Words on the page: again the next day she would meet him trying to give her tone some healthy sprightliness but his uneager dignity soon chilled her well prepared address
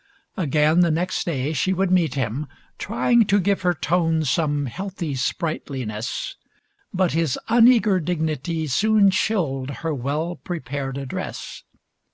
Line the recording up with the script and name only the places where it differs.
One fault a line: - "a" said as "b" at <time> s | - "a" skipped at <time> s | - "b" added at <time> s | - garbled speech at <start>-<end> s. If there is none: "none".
none